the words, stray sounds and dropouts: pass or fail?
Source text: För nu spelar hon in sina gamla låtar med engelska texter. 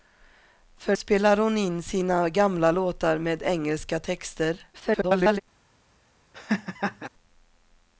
fail